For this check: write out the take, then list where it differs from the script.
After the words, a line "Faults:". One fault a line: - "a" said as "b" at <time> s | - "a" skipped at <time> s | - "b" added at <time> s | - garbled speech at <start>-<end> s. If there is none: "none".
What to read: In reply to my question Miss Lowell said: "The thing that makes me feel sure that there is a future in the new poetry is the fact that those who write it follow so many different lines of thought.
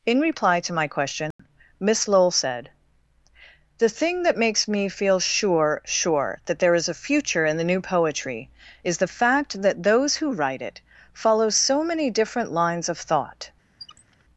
In reply to my question Miss Lowell said: "The thing that makes me feel sure sure that there is a future in the new poetry is the fact that those who write it follow so many different lines of thought.
Faults:
- "sure" added at 5.8 s